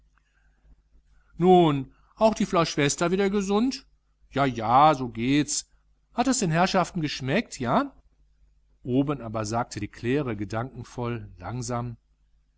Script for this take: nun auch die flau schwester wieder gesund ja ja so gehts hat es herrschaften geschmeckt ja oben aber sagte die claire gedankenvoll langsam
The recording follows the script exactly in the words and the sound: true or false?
false